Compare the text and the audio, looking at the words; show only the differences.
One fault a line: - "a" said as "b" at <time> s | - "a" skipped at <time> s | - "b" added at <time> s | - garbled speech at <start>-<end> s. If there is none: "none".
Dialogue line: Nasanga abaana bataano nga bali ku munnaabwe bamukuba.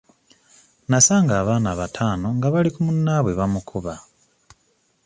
none